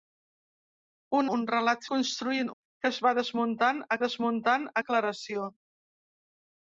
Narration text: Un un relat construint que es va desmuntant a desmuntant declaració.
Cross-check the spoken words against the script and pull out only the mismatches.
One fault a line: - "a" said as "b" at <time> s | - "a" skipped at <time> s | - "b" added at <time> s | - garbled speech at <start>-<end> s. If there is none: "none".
none